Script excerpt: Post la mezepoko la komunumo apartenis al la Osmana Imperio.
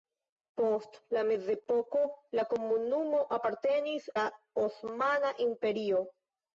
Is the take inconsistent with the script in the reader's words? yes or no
yes